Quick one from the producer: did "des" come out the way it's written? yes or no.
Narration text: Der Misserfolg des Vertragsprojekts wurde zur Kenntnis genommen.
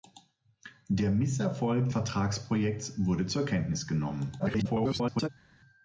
no